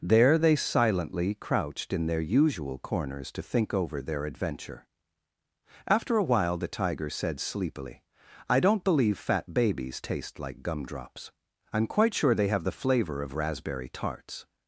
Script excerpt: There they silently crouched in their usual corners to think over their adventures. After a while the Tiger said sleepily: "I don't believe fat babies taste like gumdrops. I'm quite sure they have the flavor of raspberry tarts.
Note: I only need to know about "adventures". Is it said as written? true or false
false